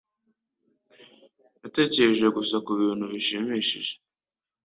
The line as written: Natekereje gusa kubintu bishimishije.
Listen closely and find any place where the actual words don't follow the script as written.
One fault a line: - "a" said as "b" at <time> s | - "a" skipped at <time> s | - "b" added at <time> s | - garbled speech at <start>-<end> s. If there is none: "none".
none